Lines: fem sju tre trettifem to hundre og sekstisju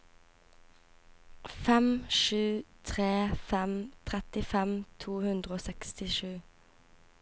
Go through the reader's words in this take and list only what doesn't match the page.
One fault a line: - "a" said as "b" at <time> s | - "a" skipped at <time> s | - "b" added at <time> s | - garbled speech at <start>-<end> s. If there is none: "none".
- "fem" added at 3.5 s